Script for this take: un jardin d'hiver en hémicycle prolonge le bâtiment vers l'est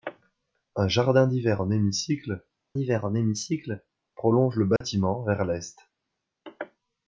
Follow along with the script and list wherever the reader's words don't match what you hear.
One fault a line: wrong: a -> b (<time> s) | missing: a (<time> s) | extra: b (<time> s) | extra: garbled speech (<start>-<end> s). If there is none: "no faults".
extra: d'hiver en hémicycle (2.7 s)